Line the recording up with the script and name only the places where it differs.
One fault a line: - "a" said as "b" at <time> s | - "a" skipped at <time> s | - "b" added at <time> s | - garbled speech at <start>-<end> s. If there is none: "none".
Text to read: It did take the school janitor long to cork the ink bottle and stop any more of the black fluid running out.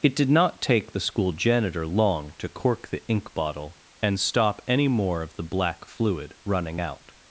- "not" added at 0.3 s